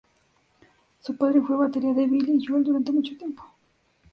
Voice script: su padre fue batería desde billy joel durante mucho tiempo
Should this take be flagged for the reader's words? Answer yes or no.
yes